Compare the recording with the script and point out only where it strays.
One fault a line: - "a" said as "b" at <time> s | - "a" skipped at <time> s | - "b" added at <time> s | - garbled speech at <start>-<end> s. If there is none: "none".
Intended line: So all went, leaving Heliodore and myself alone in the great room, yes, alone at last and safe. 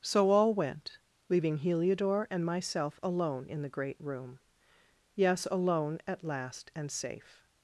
none